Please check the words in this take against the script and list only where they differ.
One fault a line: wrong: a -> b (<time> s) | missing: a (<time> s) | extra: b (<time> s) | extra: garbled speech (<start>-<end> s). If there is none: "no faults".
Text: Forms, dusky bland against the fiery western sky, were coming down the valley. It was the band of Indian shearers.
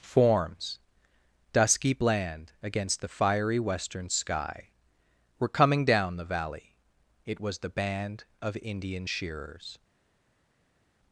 no faults